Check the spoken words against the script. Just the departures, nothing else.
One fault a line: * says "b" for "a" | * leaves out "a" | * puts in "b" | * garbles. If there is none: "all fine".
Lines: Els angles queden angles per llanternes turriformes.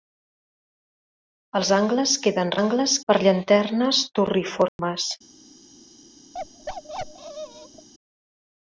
all fine